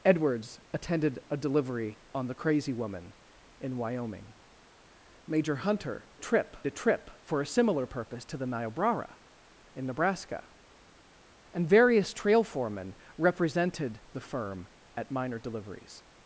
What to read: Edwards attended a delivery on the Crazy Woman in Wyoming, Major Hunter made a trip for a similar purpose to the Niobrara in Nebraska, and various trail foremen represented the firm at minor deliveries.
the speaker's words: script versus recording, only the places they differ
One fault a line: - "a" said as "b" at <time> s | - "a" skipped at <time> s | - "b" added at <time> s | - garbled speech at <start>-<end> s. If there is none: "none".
- "made" said as "trip" at 6.2 s